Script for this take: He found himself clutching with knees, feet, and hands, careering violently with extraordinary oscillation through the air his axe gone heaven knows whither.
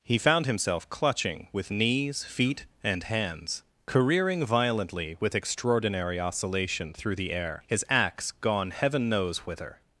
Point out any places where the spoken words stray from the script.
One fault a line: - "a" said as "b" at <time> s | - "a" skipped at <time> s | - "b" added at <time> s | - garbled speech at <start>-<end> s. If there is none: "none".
none